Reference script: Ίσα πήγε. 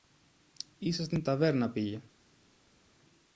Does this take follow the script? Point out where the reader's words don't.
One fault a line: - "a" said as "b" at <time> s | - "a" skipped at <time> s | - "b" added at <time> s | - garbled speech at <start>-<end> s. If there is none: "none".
- "στην ταβέρνα" added at 1.0 s